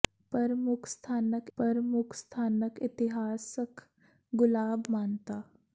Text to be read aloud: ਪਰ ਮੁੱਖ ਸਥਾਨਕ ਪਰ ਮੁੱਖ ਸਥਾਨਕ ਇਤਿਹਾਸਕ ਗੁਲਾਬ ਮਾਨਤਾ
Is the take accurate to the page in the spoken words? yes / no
yes